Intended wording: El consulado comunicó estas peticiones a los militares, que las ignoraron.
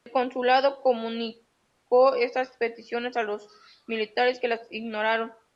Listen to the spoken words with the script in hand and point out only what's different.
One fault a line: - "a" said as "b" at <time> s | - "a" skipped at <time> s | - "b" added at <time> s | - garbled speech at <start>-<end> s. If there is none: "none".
none